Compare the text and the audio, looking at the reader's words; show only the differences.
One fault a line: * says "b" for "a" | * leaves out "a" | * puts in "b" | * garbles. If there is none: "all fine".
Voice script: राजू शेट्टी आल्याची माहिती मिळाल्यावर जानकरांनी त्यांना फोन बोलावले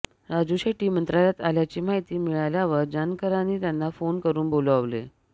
* puts in "मंत्रालयात"
* puts in "करून"